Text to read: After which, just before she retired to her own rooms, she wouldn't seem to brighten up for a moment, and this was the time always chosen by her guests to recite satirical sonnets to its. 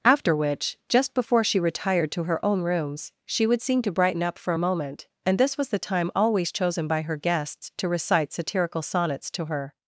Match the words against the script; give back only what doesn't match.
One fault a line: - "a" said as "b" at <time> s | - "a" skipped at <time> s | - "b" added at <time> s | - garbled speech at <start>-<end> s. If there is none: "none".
- "wouldn't" said as "would" at 3.5 s
- "its" said as "her" at 9.5 s